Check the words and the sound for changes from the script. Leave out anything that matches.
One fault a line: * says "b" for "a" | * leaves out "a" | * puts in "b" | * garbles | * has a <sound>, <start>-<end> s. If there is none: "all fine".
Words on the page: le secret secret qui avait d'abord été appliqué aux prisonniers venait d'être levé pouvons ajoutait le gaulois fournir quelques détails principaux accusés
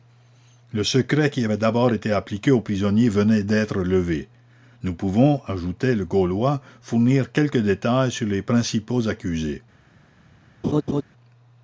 * leaves out "secret"
* puts in "nous"
* puts in "sur les"
* has a laugh, 10.6-11.0 s